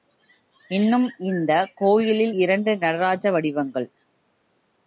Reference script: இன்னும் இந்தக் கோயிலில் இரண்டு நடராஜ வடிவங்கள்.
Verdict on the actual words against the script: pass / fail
pass